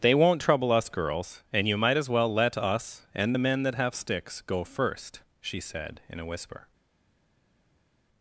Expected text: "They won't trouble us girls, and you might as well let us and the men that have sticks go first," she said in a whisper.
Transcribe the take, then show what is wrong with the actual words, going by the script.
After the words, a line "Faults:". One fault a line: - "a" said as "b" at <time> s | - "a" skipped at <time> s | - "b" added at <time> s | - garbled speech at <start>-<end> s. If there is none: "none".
"They won't trouble us girls, and you might as well let us and the men that have sticks go first," she said in a whisper.
Faults:
none